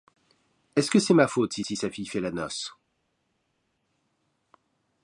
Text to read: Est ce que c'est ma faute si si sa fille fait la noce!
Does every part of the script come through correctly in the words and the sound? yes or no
yes